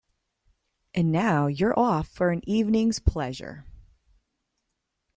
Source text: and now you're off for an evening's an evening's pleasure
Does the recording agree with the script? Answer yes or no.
no